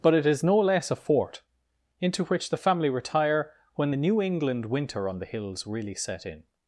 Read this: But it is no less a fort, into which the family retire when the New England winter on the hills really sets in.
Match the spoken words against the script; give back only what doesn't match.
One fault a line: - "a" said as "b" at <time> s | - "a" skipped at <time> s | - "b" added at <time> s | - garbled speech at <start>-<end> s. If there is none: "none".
- "sets" said as "set" at 5.9 s